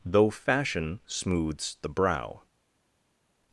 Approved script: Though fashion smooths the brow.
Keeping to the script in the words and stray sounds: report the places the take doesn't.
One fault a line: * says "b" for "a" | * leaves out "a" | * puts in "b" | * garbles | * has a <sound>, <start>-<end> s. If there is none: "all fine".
all fine